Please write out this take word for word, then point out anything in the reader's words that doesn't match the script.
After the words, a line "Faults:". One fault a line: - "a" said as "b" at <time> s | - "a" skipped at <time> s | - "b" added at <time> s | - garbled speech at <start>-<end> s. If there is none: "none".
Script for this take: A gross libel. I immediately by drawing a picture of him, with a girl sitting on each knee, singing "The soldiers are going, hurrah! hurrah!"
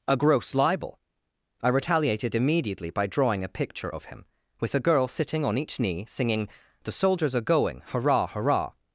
A gross libel. I retaliated immediately by drawing a picture of him, with a girl sitting on each knee, singing "The soldiers are going, hurrah! hurrah!"
Faults:
- "retaliated" added at 1.7 s